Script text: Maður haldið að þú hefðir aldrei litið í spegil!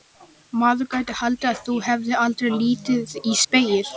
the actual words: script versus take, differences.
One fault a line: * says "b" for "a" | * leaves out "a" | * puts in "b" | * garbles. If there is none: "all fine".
* puts in "gæti"